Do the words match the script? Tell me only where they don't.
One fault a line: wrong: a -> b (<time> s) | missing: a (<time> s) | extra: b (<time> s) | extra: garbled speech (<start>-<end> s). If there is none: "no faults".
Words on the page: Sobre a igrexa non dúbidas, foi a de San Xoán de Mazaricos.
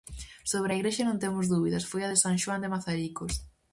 extra: temos (1.2 s)